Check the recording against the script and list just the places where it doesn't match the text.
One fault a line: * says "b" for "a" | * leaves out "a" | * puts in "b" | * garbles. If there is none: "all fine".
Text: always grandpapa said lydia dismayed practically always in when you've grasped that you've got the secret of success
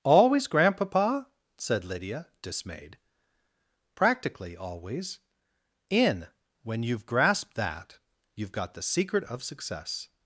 all fine